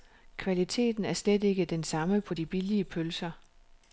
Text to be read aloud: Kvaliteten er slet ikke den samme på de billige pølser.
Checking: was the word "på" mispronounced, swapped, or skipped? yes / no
no